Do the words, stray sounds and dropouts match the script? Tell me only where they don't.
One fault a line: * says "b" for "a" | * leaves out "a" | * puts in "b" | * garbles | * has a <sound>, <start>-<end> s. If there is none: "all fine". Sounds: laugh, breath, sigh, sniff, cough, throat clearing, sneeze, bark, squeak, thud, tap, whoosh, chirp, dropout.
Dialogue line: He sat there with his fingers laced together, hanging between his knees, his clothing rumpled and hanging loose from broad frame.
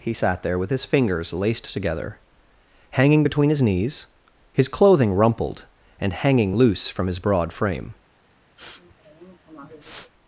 * puts in "his"
* has a sniff, 8.6-10.1 s